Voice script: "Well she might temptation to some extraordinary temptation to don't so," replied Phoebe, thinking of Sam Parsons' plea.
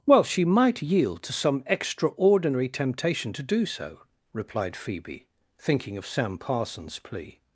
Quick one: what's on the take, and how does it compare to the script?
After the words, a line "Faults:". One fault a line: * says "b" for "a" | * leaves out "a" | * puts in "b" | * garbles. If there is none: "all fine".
"Well she might yield to some extraordinary temptation to do so," replied Phoebe, thinking of Sam Parsons' plea.
Faults:
* says "yield" for "temptation"
* says "do" for "don't"